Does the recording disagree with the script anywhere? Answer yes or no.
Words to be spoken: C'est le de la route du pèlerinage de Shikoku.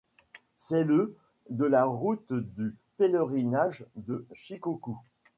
no